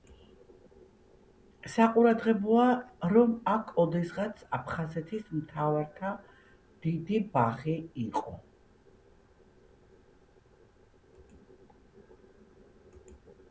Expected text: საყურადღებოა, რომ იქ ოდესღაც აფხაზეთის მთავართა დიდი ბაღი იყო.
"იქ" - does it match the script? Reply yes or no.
no